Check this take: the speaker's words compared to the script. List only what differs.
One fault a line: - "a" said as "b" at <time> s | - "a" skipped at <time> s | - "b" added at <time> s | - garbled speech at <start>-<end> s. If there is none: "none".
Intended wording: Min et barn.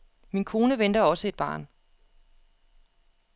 - "kone venter også" added at 0.5 s